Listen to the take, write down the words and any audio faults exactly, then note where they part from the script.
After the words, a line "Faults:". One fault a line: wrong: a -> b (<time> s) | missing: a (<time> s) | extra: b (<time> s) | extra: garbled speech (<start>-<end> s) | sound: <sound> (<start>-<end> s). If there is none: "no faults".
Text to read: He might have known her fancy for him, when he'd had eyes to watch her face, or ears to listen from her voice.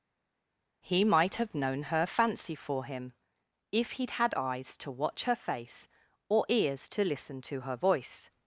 He might have known her fancy for him, if he'd had eyes to watch her face, or ears to listen to her voice.
Faults:
wrong: when -> if (3.7 s)
wrong: from -> to (7.4 s)